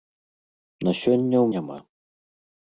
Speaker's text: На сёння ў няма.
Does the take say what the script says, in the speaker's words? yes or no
yes